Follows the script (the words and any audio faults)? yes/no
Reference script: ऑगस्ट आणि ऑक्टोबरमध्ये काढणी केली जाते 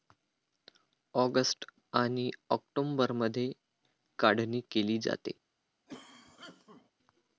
no